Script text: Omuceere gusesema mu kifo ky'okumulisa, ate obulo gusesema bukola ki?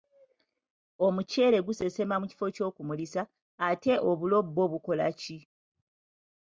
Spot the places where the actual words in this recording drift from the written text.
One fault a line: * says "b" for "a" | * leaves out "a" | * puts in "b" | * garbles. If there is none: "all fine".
* says "bwo" for "gusesema"